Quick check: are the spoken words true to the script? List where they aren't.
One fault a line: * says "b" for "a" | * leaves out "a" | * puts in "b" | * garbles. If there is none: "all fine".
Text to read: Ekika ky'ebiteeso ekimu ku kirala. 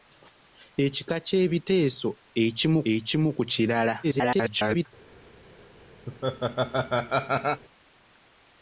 * puts in "ekimu"
* garbles